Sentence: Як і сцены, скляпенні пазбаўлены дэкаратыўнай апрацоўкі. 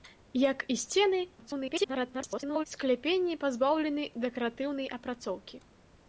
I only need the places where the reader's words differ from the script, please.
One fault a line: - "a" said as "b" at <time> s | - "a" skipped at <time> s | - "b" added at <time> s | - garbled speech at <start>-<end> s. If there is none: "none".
- garbled speech at 1.4-2.6 s